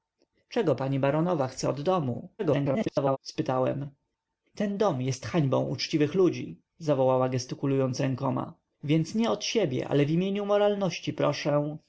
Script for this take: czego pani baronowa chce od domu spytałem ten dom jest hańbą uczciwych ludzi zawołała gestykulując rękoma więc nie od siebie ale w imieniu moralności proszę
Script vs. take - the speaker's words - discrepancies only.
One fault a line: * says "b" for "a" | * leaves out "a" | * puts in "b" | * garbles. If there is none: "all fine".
* garbles